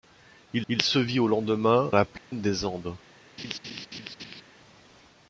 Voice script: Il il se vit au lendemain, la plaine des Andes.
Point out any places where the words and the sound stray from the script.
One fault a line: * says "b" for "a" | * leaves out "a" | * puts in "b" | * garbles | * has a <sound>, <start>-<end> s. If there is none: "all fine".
* has a dropout, 2.2-2.3 s
* has a laugh, 3.4-4.4 s